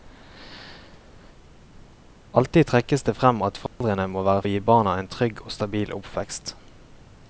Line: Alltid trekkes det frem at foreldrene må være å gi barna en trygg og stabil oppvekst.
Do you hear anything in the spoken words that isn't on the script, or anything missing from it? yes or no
no